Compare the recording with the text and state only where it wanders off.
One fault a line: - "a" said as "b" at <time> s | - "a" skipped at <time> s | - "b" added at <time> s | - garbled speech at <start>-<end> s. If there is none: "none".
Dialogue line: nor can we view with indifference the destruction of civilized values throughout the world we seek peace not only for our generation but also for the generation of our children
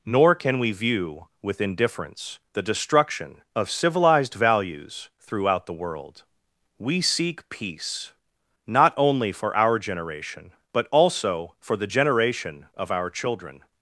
none